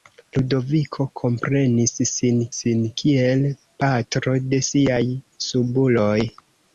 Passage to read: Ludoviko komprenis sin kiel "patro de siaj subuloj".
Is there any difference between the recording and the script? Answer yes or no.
yes